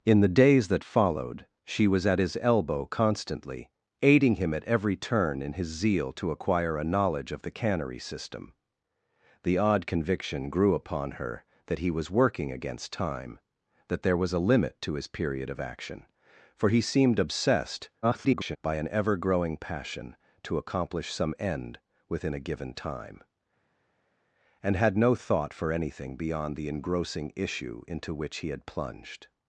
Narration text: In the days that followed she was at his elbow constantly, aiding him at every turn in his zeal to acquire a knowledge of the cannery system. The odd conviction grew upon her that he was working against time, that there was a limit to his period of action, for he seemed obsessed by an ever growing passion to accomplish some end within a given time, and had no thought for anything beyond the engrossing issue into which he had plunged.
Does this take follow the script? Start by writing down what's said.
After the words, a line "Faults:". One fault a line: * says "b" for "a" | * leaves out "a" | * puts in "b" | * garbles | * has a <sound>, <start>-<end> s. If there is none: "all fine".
In the days that followed she was at his elbow constantly, aiding him at every turn in his zeal to acquire a knowledge of the cannery system. The odd conviction grew upon her that he was working against time, that there was a limit to his period of action, for he seemed obsessed [garbled] by an ever growing passion to accomplish some end within a given time, and had no thought for anything beyond the engrossing issue into which he had plunged.
Faults:
* garbles